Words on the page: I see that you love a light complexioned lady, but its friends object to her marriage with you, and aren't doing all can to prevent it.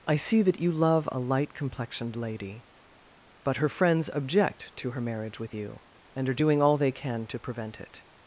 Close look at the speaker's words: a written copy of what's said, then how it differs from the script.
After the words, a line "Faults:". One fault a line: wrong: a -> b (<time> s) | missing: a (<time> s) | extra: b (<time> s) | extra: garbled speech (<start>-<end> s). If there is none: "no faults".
I see that you love a light complexioned lady, but her friends object to her marriage with you, and are doing all they can to prevent it.
Faults:
wrong: its -> her (3.6 s)
wrong: aren't -> are (6.3 s)
extra: they (6.8 s)